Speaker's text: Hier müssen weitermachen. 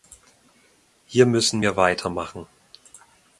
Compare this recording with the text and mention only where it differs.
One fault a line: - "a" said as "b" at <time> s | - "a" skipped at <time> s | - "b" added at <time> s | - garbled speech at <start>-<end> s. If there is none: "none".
- "wir" added at 1.6 s